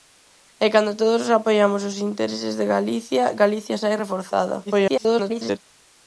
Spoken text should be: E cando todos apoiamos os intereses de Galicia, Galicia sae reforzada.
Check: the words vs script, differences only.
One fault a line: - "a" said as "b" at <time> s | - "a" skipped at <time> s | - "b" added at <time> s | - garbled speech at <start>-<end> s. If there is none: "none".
- garbled speech at 4.7-5.6 s